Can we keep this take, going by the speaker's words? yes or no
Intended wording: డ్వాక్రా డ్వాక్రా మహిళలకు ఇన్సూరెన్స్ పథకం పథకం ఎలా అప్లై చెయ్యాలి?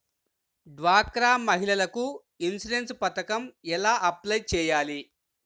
no